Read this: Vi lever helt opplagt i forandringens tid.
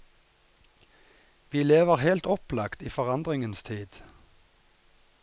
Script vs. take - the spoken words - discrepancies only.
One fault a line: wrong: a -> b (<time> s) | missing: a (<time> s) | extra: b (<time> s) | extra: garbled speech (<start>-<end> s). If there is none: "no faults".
no faults